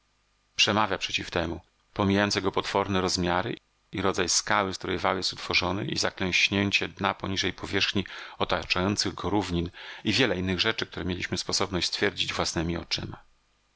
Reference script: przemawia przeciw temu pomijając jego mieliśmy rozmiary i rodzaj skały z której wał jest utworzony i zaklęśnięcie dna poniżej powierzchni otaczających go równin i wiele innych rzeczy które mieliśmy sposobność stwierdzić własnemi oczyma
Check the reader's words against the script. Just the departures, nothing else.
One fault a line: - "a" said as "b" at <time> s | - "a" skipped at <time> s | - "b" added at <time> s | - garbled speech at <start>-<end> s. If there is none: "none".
- "mieliśmy" said as "potworne" at 2.5 s